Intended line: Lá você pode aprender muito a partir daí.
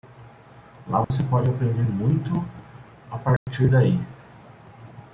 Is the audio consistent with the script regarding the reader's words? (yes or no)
yes